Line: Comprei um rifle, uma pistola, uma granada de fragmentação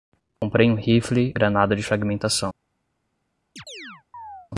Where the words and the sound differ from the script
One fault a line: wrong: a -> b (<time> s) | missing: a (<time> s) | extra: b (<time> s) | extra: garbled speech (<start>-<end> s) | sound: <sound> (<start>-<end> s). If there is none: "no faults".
sound: dropout (0.4-0.4 s)
missing: uma pistola uma (1.4 s)
sound: chirp (3.6-4.5 s)